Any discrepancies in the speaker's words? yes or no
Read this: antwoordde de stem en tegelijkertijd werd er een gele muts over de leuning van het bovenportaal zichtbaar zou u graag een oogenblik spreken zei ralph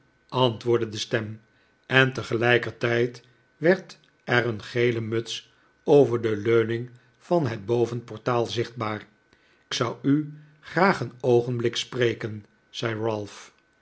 no